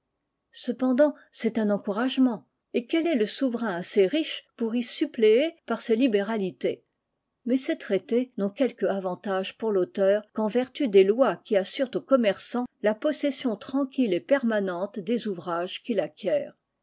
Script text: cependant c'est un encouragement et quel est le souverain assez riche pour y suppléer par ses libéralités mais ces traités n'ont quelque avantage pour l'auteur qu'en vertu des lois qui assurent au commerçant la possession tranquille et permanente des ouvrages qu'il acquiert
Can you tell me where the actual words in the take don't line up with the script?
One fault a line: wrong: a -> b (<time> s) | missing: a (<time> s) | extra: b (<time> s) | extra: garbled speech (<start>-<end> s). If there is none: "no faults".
no faults